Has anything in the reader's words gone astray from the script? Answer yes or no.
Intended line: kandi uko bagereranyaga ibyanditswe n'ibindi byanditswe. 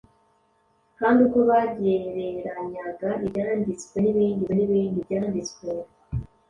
yes